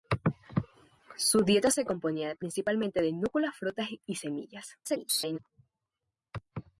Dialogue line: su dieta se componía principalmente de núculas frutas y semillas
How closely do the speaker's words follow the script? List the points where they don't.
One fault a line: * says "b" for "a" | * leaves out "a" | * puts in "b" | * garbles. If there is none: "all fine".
* garbles